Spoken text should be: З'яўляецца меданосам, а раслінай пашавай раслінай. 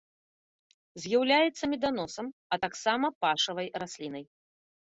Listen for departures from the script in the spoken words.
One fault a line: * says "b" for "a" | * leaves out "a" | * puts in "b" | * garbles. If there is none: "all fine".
* says "таксама" for "раслінай"